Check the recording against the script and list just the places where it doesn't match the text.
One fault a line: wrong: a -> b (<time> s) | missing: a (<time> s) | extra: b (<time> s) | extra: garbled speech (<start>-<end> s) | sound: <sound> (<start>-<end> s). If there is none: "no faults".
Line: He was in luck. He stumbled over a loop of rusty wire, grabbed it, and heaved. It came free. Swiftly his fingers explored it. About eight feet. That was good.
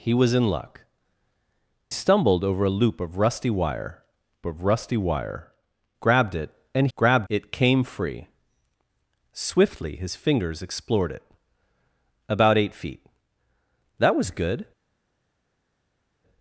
missing: He (0.8 s)
extra: of rusty wire (4.4 s)
wrong: heaved -> grabbed (7.0 s)